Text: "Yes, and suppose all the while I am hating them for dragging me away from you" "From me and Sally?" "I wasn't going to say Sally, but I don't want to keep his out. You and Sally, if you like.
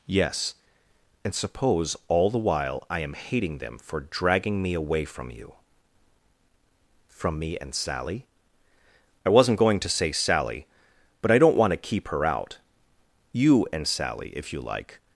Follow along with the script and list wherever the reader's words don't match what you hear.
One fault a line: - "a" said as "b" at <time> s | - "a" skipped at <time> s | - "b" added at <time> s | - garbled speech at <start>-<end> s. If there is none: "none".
- "his" said as "her" at 12.1 s